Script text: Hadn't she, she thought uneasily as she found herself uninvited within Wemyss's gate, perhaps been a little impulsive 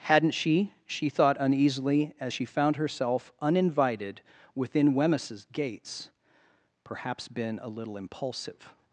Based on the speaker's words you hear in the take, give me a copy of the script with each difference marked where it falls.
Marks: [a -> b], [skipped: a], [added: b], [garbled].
Hadn't she, she thought uneasily as she found herself uninvited within Wemyss's [gate, -> gates] perhaps been a little impulsive